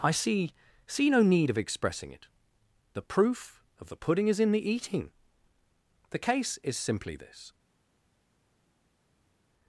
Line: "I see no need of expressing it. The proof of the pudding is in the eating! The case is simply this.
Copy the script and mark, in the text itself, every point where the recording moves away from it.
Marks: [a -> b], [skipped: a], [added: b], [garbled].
"I see [added: see] no need of expressing it. The proof of the pudding is in the eating! The case is simply this.